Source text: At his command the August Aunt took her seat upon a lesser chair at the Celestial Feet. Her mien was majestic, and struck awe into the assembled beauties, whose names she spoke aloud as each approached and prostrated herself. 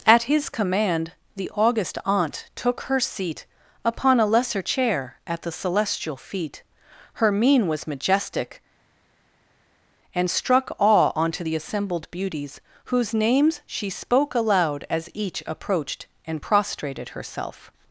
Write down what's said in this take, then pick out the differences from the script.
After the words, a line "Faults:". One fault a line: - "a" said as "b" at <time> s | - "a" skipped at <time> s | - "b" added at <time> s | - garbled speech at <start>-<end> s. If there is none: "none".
At his command the August Aunt took her seat upon a lesser chair at the Celestial Feet. Her mien was majestic, and struck awe onto the assembled beauties, whose names she spoke aloud as each approached and prostrated herself.
Faults:
- "into" said as "onto" at 11.1 s